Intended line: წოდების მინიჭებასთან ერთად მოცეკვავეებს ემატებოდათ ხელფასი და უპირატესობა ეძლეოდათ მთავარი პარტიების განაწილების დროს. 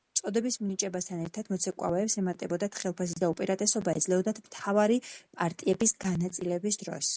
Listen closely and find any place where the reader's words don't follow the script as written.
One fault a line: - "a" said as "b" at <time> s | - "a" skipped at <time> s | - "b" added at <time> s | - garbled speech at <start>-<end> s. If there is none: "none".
none